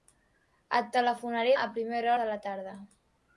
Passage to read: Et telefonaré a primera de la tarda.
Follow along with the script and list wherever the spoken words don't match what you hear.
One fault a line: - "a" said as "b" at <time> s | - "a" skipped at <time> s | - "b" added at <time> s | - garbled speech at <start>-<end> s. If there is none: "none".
none